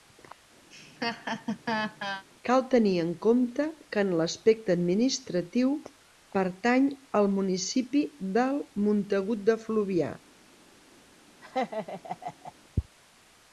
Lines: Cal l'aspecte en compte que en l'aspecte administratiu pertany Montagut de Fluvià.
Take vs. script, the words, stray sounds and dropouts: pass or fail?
fail